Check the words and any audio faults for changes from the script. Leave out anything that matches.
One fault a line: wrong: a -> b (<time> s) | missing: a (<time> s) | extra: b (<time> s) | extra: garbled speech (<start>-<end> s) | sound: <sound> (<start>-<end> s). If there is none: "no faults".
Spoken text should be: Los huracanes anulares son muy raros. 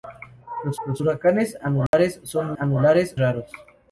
extra: los (0.9 s)
sound: dropout (1.9-1.9 s)
wrong: muy -> anulares (2.6 s)